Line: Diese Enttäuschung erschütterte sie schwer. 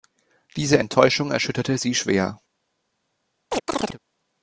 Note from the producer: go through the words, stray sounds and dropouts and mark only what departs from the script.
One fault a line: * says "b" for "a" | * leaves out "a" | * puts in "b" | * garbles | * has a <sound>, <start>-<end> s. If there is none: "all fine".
* has a chirp, 3.5-4.0 s